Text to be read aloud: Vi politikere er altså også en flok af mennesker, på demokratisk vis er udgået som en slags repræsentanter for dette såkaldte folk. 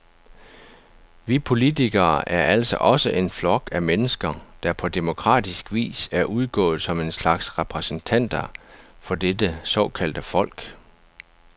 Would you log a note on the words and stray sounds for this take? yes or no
yes